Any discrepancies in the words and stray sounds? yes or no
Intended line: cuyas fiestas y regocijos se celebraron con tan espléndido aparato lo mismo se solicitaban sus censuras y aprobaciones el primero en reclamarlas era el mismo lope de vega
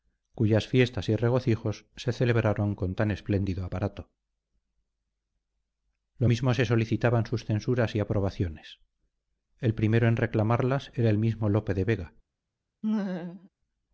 yes